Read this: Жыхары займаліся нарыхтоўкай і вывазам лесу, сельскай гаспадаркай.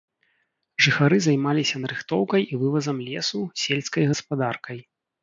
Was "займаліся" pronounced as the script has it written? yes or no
yes